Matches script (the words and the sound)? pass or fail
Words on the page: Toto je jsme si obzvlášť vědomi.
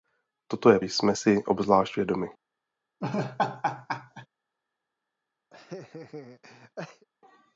fail